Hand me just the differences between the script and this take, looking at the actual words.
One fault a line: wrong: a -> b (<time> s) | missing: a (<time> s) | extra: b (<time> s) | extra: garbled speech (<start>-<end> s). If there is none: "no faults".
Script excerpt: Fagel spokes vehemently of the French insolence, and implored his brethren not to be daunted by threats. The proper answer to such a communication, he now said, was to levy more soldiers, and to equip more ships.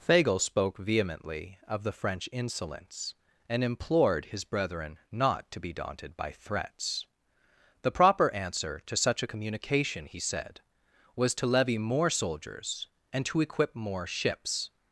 wrong: spokes -> spoke (0.4 s)
missing: now (10.2 s)